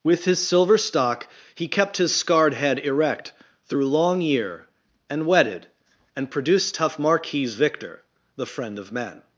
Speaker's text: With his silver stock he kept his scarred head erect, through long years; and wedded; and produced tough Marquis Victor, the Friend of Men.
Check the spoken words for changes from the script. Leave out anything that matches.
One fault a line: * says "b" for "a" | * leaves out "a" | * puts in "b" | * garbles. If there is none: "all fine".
* says "year" for "years"